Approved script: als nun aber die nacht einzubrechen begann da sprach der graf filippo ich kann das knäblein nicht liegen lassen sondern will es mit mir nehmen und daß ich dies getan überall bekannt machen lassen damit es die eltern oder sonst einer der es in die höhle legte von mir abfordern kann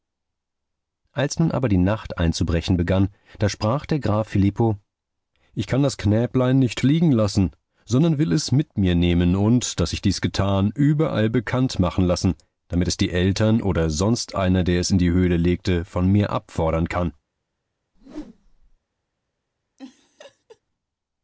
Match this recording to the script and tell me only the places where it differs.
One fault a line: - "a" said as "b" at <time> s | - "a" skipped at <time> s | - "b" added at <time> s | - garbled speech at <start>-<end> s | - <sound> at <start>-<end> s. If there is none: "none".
- whoosh at 17.9-18.8 s
- laugh at 19.8-20.6 s